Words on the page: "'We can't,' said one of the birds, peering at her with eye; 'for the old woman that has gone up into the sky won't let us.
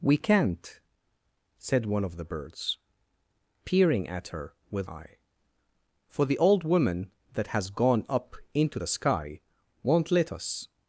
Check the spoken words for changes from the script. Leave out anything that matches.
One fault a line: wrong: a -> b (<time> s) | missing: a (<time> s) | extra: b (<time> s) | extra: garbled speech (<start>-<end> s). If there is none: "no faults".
no faults